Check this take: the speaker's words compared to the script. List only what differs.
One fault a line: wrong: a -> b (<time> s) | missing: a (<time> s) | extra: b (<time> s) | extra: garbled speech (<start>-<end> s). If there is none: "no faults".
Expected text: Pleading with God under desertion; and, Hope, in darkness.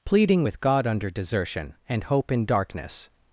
no faults